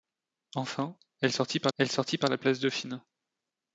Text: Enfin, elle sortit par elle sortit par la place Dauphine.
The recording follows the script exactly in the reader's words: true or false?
true